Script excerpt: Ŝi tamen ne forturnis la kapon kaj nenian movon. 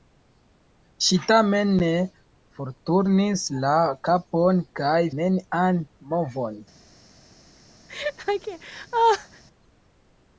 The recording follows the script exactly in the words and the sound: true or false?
false